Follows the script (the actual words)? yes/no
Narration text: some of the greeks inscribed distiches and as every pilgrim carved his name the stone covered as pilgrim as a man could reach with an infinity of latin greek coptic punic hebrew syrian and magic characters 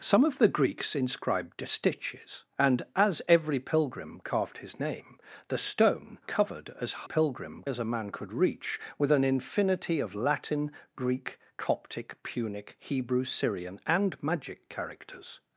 yes